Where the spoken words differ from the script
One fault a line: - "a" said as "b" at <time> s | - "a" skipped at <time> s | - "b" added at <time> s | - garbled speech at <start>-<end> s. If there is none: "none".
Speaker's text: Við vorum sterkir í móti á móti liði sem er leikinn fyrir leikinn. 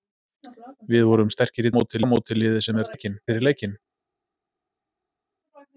none